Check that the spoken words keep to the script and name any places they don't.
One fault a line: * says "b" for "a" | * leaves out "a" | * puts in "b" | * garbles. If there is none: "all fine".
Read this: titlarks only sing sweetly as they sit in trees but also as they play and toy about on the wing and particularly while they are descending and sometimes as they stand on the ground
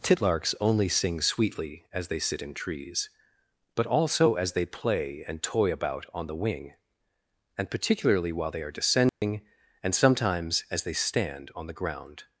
all fine